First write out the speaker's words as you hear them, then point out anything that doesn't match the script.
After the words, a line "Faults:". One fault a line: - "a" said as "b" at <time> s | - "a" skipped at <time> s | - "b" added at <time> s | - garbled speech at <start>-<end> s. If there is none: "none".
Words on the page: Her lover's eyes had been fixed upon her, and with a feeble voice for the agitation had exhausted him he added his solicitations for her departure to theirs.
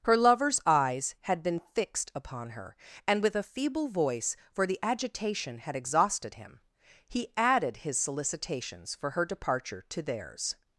Her lover's eyes had been fixed upon her, and with a feeble voice for the agitation had exhausted him he added his solicitations for her departure to theirs.
Faults:
none